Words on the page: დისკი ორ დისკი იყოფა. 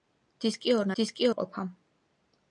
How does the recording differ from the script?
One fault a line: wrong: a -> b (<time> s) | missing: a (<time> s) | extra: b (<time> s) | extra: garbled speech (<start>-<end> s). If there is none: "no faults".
no faults